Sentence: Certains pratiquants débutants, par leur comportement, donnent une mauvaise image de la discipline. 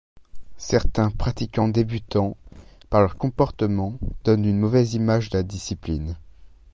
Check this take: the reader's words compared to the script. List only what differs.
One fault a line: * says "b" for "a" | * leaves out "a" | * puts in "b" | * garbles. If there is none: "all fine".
all fine